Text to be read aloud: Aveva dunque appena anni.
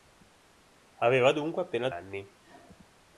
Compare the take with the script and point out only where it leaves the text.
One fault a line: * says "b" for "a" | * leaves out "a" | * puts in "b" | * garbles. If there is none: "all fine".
all fine